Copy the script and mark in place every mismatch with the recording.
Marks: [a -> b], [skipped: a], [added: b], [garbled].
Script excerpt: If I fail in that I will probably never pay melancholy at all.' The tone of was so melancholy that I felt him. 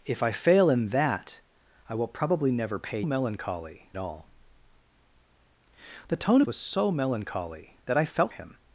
If I fail in that I will probably never pay melancholy at all.' The tone of was so melancholy that I felt him.